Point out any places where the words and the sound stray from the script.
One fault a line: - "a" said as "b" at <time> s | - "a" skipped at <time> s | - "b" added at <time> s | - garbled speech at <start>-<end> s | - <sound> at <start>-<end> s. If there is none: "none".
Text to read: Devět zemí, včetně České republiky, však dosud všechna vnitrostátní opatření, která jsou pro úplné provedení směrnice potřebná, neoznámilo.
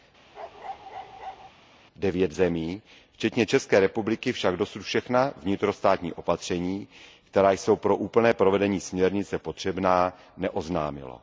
- bark at 0.3-1.5 s